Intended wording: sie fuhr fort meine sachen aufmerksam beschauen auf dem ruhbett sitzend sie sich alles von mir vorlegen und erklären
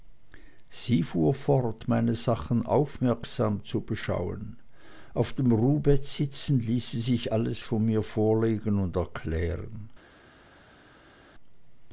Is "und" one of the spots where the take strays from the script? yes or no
no